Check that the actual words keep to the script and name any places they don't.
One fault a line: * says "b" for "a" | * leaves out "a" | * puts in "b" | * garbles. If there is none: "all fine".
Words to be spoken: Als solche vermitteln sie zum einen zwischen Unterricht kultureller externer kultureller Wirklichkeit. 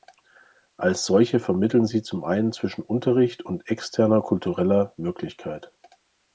* says "und" for "kultureller"